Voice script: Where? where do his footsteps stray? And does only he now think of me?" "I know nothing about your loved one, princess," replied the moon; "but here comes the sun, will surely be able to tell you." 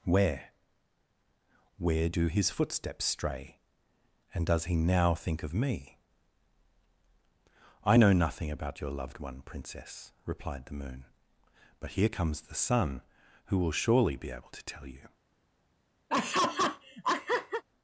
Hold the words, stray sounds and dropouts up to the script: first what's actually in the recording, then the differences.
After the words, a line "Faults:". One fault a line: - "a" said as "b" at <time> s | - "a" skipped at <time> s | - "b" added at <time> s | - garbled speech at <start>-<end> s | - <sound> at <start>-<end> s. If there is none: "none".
Where? where do his footsteps stray? And does he now think of me?" "I know nothing about your loved one, princess," replied the moon; "but here comes the sun, who will surely be able to tell you."
Faults:
- "only" skipped at 4.7 s
- "who" added at 13.5 s
- laugh at 16.1-17.6 s